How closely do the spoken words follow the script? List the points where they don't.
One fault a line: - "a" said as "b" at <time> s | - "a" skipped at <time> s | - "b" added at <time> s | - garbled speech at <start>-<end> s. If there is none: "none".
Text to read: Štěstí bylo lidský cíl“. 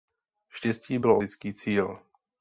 none